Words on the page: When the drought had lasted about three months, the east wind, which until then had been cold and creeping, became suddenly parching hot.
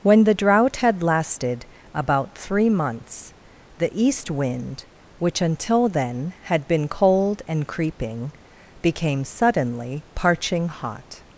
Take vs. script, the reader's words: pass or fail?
pass